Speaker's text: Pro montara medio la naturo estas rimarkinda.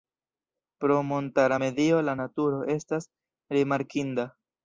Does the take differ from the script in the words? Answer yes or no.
no